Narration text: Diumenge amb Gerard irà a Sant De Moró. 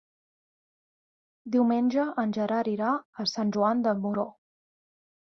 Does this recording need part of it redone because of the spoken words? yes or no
yes